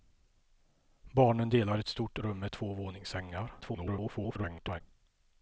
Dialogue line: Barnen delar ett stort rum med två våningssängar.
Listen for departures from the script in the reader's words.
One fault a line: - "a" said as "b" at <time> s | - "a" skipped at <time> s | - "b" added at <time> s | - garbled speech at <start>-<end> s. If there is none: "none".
- garbled speech at 3.6-4.8 s